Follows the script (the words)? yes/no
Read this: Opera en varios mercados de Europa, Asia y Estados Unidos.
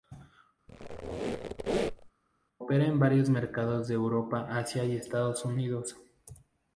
yes